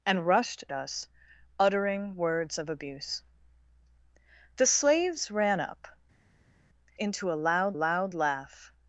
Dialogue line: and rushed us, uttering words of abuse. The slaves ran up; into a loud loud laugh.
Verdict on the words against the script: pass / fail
pass